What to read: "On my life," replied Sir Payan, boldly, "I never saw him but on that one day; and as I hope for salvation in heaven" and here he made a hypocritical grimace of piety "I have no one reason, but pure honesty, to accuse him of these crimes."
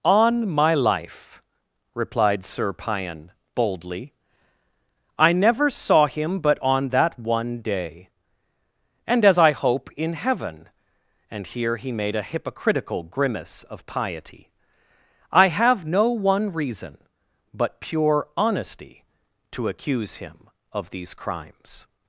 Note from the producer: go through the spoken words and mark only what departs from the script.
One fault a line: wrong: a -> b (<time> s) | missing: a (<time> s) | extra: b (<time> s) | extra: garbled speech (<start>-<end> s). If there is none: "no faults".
missing: for salvation (9.9 s)